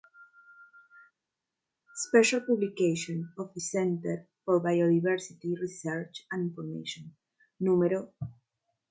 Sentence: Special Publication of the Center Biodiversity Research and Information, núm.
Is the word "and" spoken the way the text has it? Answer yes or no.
yes